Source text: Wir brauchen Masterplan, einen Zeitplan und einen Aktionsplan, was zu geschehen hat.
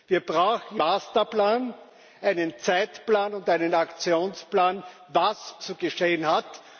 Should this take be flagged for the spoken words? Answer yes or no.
no